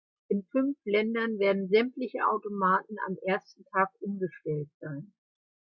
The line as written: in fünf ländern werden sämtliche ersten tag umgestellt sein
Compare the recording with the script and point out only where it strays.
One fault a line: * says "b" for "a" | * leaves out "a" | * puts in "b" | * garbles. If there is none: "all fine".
* puts in "automaten am"